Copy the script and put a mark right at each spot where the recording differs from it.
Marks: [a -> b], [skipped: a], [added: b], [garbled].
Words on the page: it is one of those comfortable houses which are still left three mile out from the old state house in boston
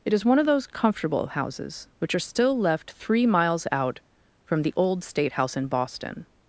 it is one of those comfortable houses which are still left three [mile -> miles] out from the old state house in boston